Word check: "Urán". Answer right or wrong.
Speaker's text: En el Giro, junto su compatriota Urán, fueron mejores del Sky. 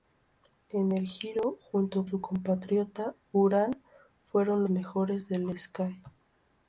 right